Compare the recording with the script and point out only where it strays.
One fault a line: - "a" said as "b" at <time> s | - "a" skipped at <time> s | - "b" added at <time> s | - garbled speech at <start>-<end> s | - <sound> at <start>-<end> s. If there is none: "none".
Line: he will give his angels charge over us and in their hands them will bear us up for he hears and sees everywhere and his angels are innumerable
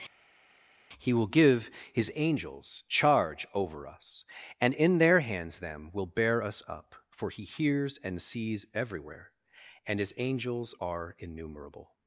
none